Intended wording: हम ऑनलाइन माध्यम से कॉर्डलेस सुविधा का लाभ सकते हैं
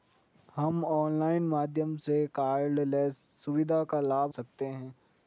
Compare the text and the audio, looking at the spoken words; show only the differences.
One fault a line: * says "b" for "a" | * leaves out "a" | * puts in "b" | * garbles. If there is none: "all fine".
all fine